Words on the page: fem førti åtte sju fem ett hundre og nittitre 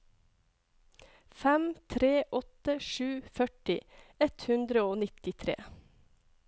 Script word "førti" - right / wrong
wrong